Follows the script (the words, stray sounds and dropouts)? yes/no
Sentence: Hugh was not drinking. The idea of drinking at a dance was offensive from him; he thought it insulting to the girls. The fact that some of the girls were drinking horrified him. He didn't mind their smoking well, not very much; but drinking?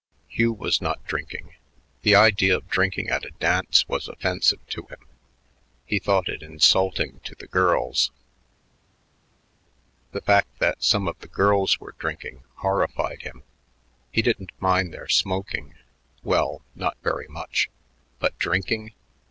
no